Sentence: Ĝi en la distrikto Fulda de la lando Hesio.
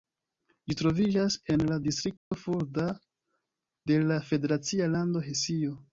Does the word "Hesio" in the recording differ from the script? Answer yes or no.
no